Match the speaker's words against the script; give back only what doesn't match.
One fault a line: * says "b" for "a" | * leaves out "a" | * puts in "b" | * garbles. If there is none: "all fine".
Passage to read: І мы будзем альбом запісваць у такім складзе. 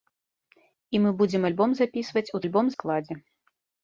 * says "альбом" for "такім"